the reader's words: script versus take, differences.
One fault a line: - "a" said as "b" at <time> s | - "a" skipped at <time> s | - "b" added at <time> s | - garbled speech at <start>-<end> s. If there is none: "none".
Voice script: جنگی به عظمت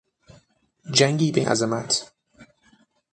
none